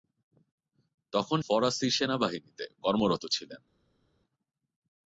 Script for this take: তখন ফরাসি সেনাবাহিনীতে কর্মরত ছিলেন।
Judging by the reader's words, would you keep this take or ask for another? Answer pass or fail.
pass